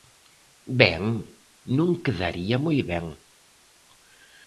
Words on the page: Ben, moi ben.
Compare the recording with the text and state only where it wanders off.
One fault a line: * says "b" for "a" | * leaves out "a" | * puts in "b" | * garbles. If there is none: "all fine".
* puts in "non quedaría"